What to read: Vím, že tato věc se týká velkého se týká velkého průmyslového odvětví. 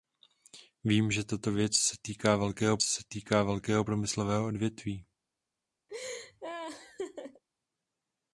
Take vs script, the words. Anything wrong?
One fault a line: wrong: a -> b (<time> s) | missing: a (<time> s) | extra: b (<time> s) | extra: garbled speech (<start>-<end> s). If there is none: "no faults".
no faults